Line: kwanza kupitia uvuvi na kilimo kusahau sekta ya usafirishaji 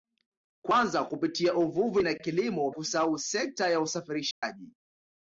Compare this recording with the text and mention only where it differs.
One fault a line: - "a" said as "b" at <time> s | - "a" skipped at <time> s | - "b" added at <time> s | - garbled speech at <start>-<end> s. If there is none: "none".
none